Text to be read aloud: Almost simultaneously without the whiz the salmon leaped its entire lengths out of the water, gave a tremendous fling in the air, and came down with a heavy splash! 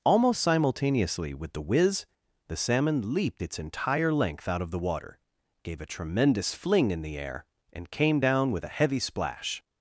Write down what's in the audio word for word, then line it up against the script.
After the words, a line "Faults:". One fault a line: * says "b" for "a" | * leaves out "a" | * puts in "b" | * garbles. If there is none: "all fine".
Almost simultaneously with the whiz the salmon leaped its entire length out of the water, gave a tremendous fling in the air, and came down with a heavy splash!
Faults:
* says "with" for "without"
* says "length" for "lengths"